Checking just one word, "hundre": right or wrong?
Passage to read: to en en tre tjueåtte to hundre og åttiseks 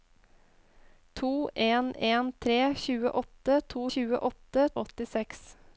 wrong